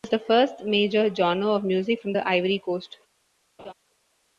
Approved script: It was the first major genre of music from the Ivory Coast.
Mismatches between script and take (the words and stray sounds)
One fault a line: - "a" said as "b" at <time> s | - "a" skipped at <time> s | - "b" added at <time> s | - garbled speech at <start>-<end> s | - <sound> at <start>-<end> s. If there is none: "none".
- laugh at 3.6-3.7 s